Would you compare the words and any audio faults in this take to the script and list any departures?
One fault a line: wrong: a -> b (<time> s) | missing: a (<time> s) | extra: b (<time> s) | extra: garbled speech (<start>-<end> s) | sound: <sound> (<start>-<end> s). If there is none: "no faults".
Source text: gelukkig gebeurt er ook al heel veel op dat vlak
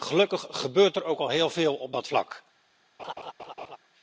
sound: laugh (3.0-3.8 s)